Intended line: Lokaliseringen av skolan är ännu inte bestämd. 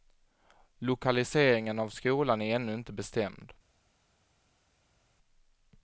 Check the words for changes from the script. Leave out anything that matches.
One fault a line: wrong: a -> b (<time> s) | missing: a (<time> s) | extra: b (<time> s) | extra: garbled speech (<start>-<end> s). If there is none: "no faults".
no faults